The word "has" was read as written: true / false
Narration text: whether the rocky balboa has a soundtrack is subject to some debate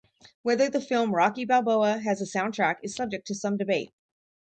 true